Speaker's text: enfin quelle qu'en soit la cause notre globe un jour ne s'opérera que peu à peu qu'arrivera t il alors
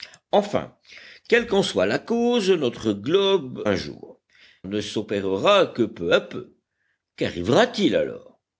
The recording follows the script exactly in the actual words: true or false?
true